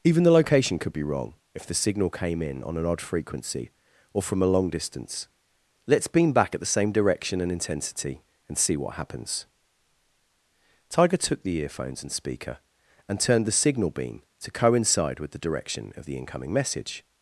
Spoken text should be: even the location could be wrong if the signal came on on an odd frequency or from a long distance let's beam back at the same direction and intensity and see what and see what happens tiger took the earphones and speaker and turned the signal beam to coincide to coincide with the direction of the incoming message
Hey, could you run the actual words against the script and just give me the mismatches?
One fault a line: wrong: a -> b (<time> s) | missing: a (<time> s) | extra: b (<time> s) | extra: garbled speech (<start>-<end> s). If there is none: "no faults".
wrong: on -> in (2.4 s)
missing: and see what (8.9 s)
missing: to coincide (15.2 s)